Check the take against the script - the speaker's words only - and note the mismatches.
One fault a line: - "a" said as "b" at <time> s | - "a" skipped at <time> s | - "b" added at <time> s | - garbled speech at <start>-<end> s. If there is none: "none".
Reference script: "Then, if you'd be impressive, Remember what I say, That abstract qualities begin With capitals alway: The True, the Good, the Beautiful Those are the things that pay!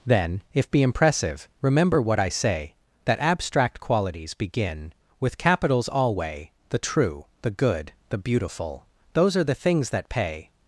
- "you'd" skipped at 0.7 s